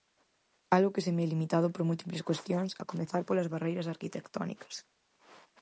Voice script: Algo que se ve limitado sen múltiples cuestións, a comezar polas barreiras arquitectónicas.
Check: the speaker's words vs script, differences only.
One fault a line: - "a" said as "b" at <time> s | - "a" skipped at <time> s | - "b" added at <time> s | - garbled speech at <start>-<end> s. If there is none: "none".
- "sen" said as "por" at 1.7 s